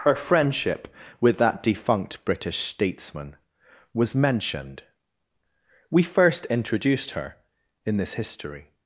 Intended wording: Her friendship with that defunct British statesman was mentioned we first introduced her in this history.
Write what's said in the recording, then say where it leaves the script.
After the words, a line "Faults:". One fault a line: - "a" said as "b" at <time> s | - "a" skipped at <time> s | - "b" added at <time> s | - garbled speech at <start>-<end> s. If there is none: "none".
Her friendship with that defunct British statesman was mentioned we first introduced her in this history.
Faults:
none